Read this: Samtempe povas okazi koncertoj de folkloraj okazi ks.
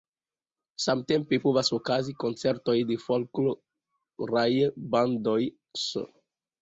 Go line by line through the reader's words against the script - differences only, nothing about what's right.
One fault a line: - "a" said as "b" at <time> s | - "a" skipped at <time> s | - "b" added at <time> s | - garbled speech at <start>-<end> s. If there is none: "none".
- "okazi" said as "bandoj" at 4.9 s